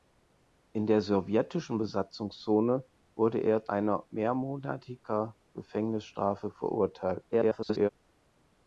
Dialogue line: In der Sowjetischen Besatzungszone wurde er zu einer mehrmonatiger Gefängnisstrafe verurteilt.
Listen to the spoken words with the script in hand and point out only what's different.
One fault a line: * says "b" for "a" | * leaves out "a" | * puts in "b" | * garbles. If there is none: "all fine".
* leaves out "zu"
* garbles